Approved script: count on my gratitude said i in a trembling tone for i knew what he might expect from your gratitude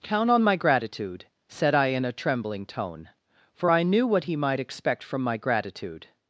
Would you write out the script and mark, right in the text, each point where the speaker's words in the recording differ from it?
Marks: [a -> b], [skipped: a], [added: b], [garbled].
count on my gratitude said i in a trembling tone for i knew what he might expect from [your -> my] gratitude